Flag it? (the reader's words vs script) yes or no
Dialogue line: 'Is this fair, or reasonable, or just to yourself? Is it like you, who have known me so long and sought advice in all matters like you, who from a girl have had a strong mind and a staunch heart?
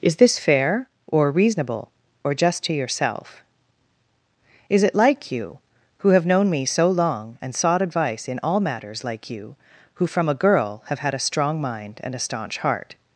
no